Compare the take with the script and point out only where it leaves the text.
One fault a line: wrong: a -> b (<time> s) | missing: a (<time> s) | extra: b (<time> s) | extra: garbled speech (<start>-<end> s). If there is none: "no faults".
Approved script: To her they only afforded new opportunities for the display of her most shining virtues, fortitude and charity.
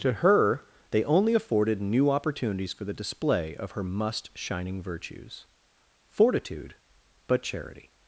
wrong: most -> must (3.8 s)
wrong: and -> but (7.3 s)